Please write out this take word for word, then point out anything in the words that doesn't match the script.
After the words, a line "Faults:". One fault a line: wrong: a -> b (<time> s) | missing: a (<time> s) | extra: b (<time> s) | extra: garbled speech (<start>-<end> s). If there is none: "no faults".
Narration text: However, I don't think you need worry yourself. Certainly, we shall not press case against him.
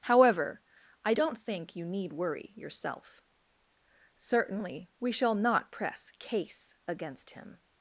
However, I don't think you need worry yourself. Certainly, we shall not press case against him.
Faults:
no faults